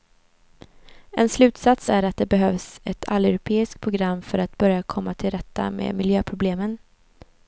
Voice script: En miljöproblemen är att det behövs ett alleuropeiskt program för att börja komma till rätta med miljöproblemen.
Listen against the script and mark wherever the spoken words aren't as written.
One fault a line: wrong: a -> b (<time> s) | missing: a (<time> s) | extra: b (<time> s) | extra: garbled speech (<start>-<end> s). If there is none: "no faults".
wrong: miljöproblemen -> slutsats (1.3 s)